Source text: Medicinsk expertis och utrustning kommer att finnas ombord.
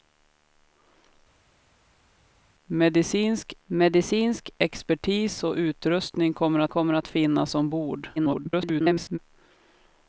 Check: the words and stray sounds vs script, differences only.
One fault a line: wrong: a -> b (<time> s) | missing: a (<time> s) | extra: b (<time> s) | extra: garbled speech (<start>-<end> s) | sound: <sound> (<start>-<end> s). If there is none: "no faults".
extra: medicinsk (3.6 s)
extra: kommer att (6.7 s)
extra: garbled speech (8.2-9.2 s)